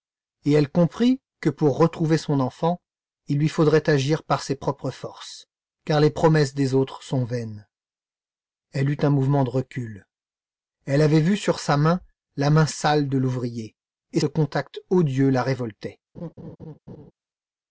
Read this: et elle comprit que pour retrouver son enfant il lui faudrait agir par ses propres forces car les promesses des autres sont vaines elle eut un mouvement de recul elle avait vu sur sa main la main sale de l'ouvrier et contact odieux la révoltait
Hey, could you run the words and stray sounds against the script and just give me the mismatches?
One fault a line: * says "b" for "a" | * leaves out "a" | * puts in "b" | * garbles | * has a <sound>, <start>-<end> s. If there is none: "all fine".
* has a laugh, 16.1-17.1 s